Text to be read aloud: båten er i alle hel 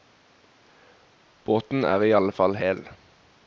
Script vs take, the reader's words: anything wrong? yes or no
yes